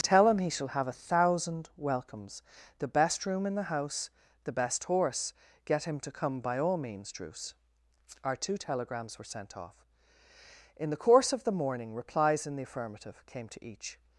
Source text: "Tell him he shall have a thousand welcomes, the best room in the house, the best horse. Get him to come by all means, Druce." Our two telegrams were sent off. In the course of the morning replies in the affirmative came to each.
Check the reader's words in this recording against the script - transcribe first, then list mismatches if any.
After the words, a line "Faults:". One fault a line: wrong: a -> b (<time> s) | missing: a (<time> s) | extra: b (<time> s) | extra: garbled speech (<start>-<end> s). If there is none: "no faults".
"Tell him he shall have a thousand welcomes, the best room in the house, the best horse. Get him to come by all means, Druce." Our two telegrams were sent off. In the course of the morning replies in the affirmative came to each.
Faults:
no faults